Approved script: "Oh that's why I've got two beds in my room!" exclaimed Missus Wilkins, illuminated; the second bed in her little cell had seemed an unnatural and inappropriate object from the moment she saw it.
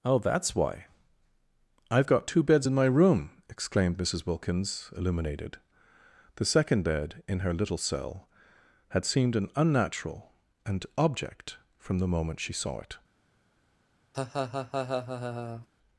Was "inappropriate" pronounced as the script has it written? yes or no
no